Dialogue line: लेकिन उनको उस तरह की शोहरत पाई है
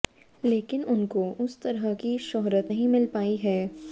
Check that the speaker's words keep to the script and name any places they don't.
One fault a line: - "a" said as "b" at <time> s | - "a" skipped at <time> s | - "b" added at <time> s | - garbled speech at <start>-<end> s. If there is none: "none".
- "नहीं मिल" added at 2.7 s